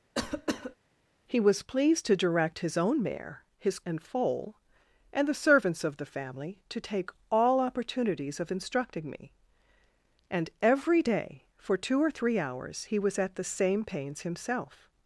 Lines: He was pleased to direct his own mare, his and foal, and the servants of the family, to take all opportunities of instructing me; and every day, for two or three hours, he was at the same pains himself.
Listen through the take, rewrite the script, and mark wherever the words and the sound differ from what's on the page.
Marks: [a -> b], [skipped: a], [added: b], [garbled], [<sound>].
[cough] He was pleased to direct his own mare, his and foal, and the servants of the family, to take all opportunities of instructing me; and every day, for two or three hours, he was at the same pains himself.